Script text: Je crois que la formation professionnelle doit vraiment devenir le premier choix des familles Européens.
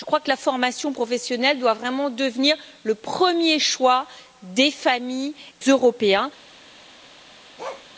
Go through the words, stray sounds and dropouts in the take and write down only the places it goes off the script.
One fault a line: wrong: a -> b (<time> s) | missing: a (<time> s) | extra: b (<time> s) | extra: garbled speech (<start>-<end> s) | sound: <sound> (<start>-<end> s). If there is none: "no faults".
sound: bark (7.6-7.9 s)